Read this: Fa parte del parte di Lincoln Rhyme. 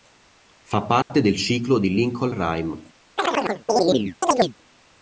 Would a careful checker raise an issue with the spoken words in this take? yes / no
yes